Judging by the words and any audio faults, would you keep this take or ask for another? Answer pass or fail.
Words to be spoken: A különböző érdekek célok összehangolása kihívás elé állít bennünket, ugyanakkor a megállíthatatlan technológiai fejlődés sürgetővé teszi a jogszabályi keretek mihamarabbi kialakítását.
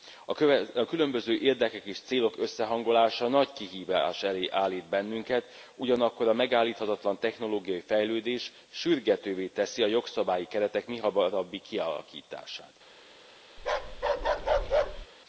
fail